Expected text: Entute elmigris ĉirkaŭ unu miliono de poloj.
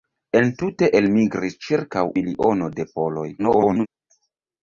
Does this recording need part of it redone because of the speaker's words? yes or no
yes